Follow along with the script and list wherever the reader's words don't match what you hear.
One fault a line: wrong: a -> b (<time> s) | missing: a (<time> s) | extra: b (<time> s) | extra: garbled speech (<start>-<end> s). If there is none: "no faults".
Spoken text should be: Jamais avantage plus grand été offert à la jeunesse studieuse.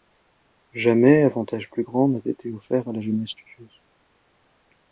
extra: n'a (2.1 s)